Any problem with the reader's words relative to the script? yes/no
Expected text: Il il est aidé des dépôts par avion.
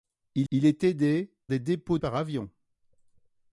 no